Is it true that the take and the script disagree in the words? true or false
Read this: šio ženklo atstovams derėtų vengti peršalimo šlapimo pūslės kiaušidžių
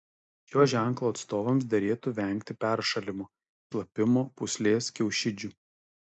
false